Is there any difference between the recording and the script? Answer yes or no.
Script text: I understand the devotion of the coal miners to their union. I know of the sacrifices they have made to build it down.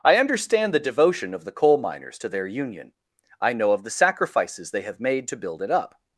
yes